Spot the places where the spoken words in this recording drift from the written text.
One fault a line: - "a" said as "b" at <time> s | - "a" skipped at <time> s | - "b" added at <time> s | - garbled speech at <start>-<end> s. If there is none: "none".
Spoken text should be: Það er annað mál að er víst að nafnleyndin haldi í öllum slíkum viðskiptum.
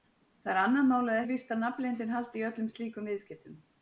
none